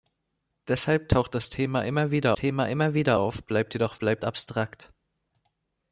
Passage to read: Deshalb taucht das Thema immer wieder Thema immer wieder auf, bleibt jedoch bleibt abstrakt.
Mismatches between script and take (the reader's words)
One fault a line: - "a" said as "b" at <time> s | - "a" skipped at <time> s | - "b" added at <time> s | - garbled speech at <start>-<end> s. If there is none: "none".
none